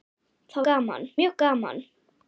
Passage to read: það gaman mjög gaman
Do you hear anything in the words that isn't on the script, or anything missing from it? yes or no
no